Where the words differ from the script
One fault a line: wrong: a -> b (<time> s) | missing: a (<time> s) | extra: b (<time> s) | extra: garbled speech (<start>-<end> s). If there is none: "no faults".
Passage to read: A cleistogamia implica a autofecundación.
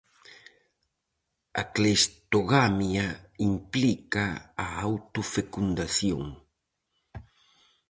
no faults